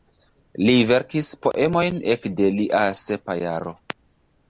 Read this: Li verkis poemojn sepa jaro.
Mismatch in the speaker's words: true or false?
true